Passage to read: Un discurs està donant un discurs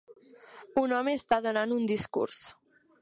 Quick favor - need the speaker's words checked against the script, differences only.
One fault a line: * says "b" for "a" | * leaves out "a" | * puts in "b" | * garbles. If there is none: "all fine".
* says "home" for "discurs"